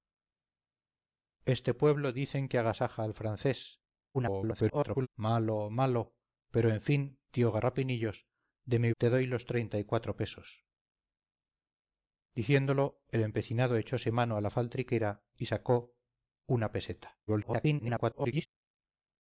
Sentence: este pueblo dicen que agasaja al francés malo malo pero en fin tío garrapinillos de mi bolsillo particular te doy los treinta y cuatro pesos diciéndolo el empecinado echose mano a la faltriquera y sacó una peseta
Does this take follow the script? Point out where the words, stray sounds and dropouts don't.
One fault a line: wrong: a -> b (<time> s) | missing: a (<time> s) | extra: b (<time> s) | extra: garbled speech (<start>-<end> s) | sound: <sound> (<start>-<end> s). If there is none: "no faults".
extra: garbled speech (4.1-5.1 s)
missing: bolsillo particular (8.9 s)
extra: garbled speech (17.3-18.5 s)